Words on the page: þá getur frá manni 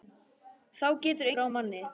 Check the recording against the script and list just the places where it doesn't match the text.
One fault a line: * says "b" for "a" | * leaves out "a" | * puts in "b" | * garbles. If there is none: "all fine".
all fine